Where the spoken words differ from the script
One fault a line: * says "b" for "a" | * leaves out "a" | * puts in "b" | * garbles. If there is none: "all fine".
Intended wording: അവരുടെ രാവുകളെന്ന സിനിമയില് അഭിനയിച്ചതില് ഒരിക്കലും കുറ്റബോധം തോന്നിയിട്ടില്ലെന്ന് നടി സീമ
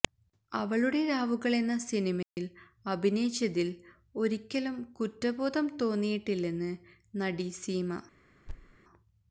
* says "അവളുടെ" for "അവരുടെ"